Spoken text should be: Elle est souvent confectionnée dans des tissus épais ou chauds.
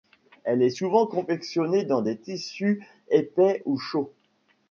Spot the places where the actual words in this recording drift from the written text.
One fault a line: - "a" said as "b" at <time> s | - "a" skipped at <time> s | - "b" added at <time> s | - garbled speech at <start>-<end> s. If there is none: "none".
none